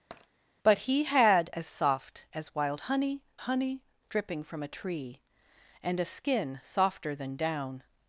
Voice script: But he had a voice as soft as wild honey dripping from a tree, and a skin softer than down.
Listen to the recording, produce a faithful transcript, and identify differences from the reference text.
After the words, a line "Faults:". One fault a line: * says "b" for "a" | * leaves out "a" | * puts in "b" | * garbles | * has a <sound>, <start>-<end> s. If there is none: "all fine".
But he had as soft as wild honey honey dripping from a tree, and a skin softer than down.
Faults:
* has a tap, 0.1-0.3 s
* leaves out "a voice"
* puts in "honey"